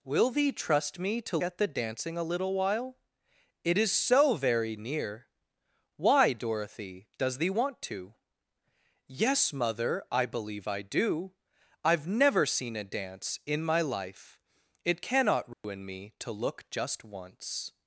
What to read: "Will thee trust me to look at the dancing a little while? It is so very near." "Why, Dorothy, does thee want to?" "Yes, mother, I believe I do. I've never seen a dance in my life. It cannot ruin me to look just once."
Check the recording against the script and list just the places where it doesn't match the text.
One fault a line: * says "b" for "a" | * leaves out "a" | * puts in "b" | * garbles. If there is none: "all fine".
* leaves out "look"